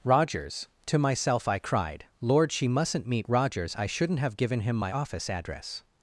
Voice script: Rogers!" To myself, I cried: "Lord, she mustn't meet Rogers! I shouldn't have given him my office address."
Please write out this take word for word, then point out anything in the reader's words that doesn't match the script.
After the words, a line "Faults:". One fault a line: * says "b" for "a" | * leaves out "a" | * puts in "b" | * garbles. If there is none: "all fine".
Rogers!" To myself, I cried: "Lord, she mustn't meet Rogers! I shouldn't have given him my office address."
Faults:
all fine